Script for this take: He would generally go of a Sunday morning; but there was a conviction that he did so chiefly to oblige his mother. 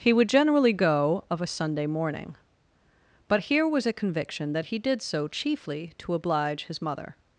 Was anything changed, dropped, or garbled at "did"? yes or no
no